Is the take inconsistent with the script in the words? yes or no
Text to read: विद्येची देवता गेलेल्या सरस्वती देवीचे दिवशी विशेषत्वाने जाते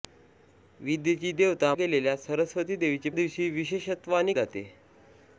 no